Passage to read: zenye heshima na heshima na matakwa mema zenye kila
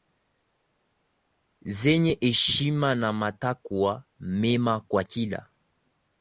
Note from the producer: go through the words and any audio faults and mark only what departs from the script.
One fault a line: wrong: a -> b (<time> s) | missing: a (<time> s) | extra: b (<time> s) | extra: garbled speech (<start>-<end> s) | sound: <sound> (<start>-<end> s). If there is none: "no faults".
missing: heshima na (3.1 s)
wrong: zenye -> kwa (4.8 s)